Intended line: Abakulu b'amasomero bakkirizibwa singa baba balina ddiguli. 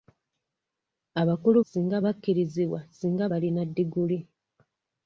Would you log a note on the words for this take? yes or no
yes